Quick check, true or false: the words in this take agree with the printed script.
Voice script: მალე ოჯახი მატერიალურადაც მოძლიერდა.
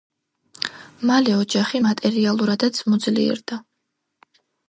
true